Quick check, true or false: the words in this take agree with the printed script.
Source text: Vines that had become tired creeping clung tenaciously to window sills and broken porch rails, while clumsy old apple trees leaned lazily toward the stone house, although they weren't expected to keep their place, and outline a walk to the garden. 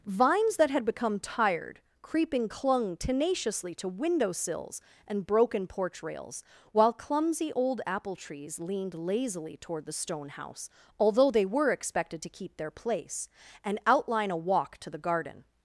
false